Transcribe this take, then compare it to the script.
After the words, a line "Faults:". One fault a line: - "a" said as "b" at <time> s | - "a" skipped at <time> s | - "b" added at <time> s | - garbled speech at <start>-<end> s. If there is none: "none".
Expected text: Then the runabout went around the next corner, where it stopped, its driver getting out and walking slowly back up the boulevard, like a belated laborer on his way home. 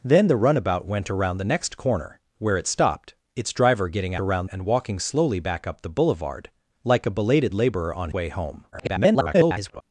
Then the runabout went around the next corner, where it stopped, its driver getting around and walking slowly back up the boulevard, like a belated laborer on way home. [garbled]
Faults:
- "out" said as "around" at 4.2 s
- "his" skipped at 8.1 s
- garbled speech at 8.7-9.8 s